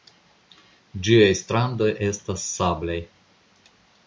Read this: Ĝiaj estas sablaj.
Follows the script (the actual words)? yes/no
no